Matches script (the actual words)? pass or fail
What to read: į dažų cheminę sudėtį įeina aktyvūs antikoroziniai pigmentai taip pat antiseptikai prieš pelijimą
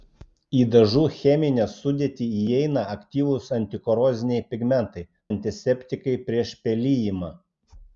fail